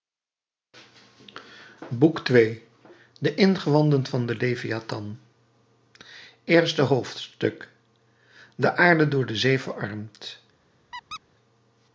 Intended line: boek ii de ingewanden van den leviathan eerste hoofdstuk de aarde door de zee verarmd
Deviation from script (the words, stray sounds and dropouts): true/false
true